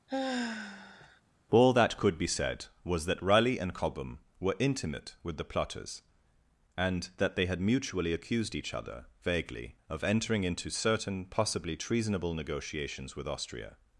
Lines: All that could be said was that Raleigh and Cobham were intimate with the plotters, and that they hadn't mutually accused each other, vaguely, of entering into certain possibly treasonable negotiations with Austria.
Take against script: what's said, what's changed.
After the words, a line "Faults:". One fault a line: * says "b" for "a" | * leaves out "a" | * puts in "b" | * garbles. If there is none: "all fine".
All that could be said was that Raleigh and Cobham were intimate with the plotters, and that they had mutually accused each other, vaguely, of entering into certain possibly treasonable negotiations with Austria.
Faults:
* says "had" for "hadn't"